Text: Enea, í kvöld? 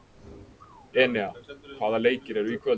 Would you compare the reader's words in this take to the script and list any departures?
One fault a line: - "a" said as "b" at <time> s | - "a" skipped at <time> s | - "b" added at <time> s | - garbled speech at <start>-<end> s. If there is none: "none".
- "hvaða leikir eru" added at 1.8 s